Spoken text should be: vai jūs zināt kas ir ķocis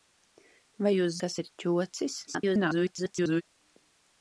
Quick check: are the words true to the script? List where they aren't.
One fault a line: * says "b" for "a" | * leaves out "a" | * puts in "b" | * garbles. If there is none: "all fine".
* leaves out "zināt"
* garbles